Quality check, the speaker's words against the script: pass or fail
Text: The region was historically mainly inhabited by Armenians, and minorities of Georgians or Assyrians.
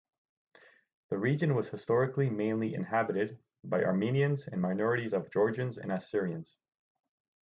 fail